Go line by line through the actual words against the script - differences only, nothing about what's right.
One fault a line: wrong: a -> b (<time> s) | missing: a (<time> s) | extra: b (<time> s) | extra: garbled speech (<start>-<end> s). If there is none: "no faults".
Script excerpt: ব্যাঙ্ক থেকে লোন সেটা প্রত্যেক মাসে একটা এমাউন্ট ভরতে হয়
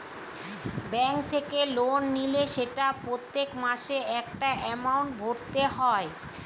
extra: নিলে (2.1 s)